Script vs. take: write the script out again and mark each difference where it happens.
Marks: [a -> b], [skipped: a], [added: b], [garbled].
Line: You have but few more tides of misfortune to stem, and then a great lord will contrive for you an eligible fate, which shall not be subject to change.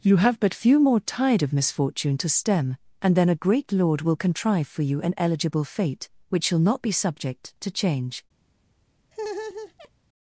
You have but few more [tides -> tide] of misfortune to stem, and then a great lord will contrive for you an eligible fate, which shall not be subject to change.